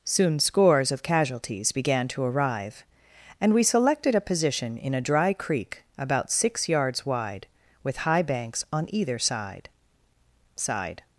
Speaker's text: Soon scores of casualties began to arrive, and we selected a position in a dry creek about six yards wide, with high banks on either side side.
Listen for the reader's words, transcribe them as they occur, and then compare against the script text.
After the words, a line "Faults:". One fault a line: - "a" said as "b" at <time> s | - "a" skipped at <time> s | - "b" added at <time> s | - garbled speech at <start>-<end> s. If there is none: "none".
Soon scores of casualties began to arrive, and we selected a position in a dry creek about six yards wide, with high banks on either side side.
Faults:
none